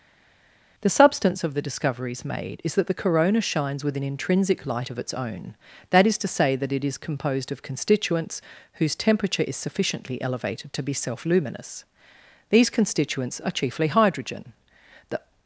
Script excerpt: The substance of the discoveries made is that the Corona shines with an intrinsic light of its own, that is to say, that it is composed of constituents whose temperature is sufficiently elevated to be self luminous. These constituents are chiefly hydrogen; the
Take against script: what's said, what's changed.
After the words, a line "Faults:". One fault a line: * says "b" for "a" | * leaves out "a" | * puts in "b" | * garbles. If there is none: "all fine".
The substance of the discoveries made is that the Corona shines with an intrinsic light of its own, that is to say, that it is composed of constituents whose temperature is sufficiently elevated to be self luminous. These constituents are chiefly hydrogen; the
Faults:
all fine